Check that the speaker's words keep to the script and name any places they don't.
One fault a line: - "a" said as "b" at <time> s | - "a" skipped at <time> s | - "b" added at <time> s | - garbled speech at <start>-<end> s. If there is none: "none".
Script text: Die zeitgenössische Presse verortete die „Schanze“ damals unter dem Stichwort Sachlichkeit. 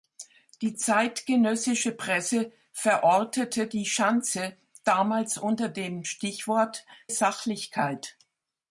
none